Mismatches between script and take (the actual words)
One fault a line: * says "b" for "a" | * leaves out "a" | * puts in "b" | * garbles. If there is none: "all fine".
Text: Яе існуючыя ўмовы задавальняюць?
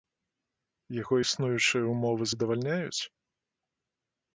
* says "Яго" for "Яе"